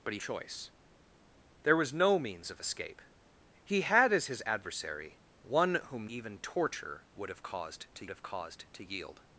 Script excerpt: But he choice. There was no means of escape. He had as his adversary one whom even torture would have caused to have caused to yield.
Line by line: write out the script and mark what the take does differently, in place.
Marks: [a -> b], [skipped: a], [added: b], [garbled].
But he choice. There was no means of escape. He had as his adversary one whom even torture would have caused to have caused to yield.